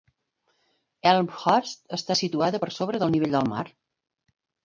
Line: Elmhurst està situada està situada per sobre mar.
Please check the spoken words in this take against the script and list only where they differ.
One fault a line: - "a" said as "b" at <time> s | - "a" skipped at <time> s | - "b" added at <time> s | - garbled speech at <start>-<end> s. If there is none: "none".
- "està situada per sobre" said as "per sobre del nivell del" at 2.6 s